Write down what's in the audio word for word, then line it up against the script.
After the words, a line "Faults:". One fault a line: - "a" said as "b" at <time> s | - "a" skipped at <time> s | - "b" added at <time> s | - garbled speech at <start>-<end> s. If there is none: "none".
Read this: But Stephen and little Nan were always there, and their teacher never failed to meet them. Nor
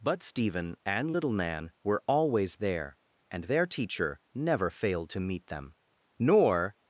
But Stephen and little Nan were always there, and their teacher never failed to meet them. Nor
Faults:
none